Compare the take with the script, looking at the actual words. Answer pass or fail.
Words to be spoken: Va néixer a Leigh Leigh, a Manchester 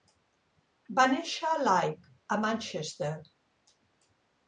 fail